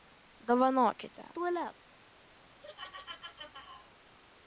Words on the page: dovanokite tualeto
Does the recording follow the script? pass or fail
pass